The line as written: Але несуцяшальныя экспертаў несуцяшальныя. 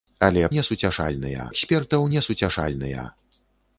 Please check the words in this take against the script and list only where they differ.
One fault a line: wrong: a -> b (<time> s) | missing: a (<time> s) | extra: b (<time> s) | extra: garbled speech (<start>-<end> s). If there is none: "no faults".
no faults